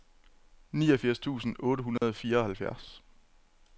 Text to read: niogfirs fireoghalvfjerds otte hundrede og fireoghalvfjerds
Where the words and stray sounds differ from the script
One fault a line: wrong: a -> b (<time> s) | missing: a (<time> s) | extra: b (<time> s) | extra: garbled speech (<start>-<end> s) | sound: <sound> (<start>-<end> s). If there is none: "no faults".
wrong: fireoghalvfjerds -> tusind (1.2 s)
sound: dropout (2.0-2.0 s)